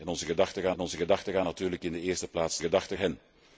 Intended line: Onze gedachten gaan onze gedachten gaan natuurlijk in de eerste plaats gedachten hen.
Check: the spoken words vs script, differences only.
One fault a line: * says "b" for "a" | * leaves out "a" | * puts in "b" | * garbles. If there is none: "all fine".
all fine